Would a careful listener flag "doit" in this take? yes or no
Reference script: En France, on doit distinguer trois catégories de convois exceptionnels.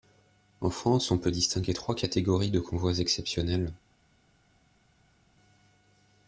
yes